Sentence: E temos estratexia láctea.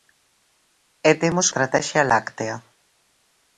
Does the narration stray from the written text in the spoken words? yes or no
no